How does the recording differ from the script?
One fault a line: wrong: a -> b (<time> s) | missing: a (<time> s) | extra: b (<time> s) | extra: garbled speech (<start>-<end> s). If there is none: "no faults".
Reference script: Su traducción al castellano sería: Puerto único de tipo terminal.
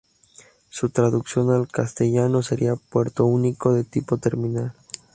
no faults